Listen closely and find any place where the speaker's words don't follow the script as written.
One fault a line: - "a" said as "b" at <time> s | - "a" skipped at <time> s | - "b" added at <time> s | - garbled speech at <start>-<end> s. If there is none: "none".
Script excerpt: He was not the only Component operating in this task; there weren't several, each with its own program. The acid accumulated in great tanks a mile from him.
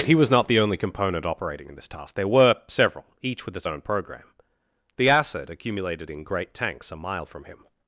- "weren't" said as "were" at 2.3 s